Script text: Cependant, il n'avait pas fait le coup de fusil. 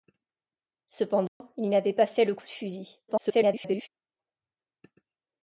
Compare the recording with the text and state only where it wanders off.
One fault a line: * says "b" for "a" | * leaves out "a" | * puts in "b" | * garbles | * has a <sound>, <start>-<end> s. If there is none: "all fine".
* has a dropout, 1.3-1.4 s
* garbles